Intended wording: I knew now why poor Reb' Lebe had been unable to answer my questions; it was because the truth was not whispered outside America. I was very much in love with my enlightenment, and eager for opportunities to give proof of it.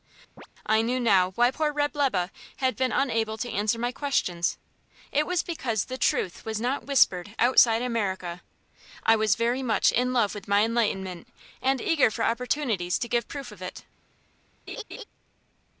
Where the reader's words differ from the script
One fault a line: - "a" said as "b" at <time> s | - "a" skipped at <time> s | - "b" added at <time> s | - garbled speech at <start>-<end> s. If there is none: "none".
none